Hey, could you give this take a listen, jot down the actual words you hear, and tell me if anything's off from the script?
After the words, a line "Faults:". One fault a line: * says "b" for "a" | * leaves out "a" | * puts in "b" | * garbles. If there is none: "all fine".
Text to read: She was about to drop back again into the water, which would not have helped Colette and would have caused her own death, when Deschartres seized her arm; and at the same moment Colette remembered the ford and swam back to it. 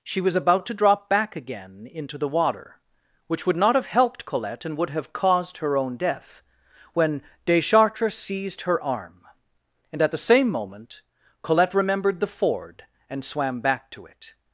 She was about to drop back again into the water, which would not have helped Colette and would have caused her own death, when Deschartres seized her arm; and at the same moment Colette remembered the ford and swam back to it.
Faults:
all fine